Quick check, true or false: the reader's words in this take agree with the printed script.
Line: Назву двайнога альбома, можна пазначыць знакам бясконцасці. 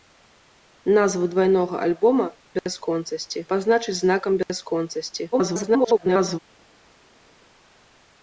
false